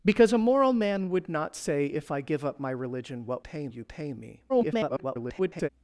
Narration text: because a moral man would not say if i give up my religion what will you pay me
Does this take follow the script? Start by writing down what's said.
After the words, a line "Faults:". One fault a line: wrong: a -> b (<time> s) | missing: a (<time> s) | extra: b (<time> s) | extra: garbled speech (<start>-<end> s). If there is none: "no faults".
because a moral man would not say if i give up my religion what pay you pay me [garbled]
Faults:
wrong: will -> pay (3.4 s)
extra: garbled speech (4.5-5.7 s)